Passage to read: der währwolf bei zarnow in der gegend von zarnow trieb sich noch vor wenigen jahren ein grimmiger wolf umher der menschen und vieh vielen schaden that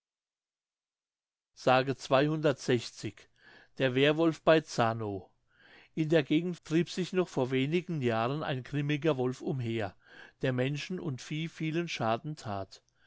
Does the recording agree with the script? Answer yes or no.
no